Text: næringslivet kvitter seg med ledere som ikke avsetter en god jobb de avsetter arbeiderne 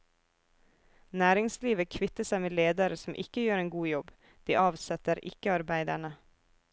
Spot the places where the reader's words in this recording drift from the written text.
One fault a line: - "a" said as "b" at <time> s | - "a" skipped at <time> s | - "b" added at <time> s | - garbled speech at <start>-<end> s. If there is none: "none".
- "avsetter" said as "gjør" at 3.5 s
- "ikke" added at 5.3 s